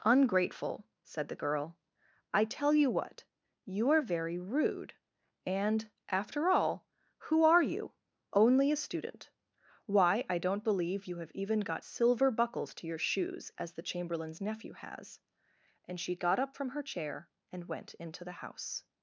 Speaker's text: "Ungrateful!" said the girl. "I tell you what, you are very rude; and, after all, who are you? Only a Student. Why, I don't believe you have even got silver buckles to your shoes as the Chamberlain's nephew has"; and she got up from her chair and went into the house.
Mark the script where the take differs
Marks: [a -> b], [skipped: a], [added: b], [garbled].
"Ungrateful!" said the girl. "I tell you what, you are very rude; and, after all, who are you? Only a Student. Why, I don't believe you have even got silver buckles to your shoes as the Chamberlain's nephew has"; and she got up from her chair and went into the house.